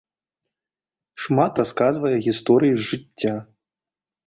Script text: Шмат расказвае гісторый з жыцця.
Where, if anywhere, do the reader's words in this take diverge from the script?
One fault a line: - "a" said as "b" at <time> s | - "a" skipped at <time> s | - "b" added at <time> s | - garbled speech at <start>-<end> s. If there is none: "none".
none